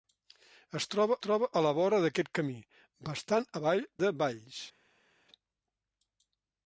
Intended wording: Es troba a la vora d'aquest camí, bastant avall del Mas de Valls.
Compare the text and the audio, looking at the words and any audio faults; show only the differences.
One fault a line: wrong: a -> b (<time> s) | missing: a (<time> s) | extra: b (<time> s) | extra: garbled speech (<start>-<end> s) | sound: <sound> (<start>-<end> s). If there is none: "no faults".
extra: troba (1.2 s)
missing: del Mas (3.8 s)